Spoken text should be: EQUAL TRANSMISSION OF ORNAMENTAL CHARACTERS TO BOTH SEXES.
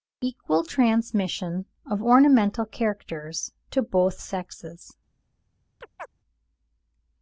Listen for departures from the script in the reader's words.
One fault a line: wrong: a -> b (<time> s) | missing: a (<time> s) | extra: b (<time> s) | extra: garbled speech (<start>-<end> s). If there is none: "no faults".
no faults